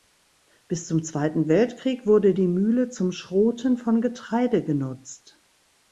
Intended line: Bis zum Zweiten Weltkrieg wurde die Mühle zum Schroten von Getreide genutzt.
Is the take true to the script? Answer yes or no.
yes